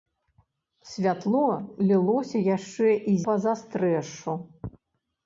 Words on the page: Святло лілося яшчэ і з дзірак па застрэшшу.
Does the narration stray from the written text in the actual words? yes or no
yes